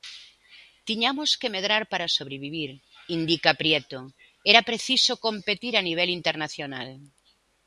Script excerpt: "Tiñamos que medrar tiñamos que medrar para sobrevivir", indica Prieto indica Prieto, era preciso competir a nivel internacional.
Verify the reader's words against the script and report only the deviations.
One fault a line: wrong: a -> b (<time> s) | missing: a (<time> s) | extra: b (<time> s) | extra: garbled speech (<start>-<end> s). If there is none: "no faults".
missing: tiñamos que medrar (1.8 s)
missing: indica Prieto (4.0 s)